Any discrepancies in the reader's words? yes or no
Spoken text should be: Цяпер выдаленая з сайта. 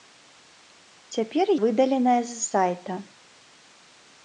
no